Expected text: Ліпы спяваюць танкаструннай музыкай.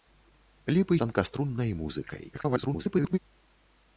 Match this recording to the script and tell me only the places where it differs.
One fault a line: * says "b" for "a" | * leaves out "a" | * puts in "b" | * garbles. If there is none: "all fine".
* leaves out "спяваюць"
* garbles